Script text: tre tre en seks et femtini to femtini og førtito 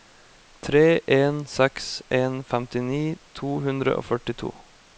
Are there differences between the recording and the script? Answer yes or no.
yes